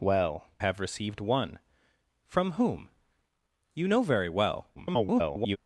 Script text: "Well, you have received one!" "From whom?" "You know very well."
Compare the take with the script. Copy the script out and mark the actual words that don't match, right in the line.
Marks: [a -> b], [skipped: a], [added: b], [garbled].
"Well, [skipped: you] have received one!" "From whom?" "You know very well." [garbled]